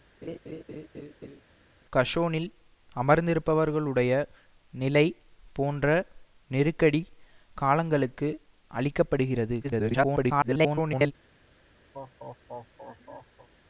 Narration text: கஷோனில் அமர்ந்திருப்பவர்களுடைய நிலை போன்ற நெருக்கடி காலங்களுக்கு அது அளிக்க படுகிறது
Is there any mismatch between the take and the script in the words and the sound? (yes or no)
yes